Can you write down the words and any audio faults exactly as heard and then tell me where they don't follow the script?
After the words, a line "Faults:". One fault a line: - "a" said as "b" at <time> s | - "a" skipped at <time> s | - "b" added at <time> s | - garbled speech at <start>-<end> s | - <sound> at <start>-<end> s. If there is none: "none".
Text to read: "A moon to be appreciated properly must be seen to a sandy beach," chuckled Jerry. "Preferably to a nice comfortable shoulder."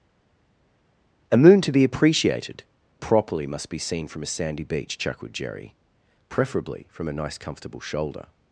"A moon to be appreciated properly must be seen from a sandy beach," chuckled Jerry. "Preferably from a nice comfortable shoulder."
Faults:
- "to" said as "from" at 4.1 s
- "to" said as "from" at 6.9 s